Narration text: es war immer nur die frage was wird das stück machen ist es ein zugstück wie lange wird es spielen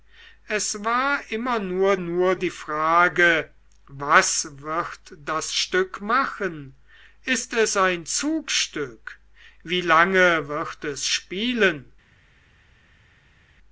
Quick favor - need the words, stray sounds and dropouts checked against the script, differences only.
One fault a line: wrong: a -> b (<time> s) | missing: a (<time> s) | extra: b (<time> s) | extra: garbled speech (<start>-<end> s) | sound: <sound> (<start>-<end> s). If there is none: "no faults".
extra: nur (2.0 s)